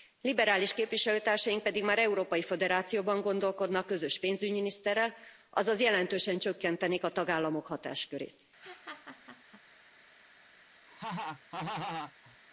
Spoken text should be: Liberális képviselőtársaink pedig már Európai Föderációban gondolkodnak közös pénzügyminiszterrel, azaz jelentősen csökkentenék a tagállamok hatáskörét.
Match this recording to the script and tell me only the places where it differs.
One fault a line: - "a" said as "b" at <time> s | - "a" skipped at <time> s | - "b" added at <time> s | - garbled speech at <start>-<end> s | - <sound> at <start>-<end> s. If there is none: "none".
- laugh at 8.6-9.6 s
- laugh at 10.9-12.4 s